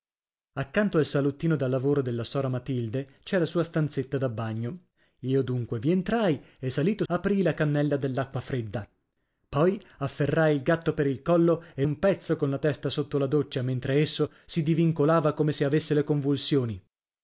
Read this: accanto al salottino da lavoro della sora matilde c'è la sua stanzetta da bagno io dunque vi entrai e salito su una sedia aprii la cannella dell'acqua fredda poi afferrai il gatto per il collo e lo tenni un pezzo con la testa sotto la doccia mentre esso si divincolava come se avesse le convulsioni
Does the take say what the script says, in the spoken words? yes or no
no